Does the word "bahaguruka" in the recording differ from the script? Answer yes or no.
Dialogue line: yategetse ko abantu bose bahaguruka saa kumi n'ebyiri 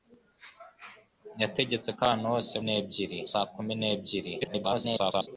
yes